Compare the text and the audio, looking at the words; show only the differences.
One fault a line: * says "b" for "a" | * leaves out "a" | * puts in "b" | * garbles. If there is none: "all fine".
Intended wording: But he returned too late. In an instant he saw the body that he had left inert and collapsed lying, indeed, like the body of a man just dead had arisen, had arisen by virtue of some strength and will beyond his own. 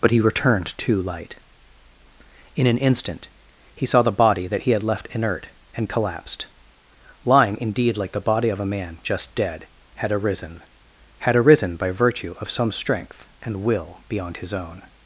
* says "light" for "late"